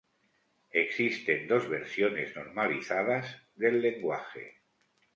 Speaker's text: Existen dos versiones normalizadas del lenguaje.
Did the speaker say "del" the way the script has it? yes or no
yes